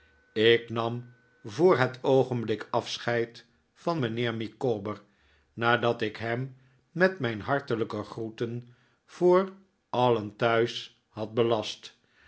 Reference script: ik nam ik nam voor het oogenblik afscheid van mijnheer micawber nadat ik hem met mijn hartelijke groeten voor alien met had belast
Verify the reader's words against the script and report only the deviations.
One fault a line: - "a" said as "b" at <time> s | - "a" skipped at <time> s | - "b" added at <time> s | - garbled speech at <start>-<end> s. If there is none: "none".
- "ik nam" skipped at 1.1 s
- "met" said as "thuis" at 10.4 s